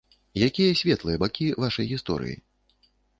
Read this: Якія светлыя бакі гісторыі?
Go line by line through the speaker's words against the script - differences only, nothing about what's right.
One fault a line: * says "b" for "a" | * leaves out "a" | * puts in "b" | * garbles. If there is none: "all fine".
* puts in "вашай"